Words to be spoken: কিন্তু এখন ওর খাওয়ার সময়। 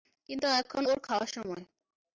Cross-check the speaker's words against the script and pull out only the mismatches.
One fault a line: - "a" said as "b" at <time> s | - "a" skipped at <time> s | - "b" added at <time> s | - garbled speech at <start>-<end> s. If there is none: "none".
none